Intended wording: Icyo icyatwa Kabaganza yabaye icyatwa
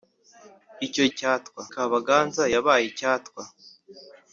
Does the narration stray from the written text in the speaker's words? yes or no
no